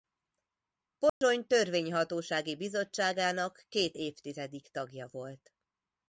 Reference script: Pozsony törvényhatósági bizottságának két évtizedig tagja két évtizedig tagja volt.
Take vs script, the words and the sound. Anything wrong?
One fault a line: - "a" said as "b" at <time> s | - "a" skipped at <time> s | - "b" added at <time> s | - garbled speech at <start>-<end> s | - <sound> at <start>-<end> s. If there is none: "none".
- dropout at 1.1-1.2 s
- "két évtizedig tagja" skipped at 5.1 s